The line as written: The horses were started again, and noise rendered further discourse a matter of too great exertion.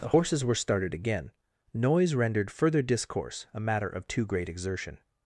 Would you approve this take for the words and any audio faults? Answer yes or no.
no